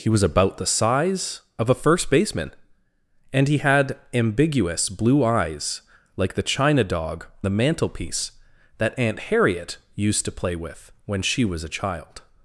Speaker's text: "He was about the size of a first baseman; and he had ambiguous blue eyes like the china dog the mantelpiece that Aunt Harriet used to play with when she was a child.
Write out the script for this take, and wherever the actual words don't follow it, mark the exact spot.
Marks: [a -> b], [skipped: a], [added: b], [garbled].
"He was about the size of a first baseman; and he had ambiguous blue eyes like the china dog the mantelpiece that Aunt Harriet used to play with when she was a child.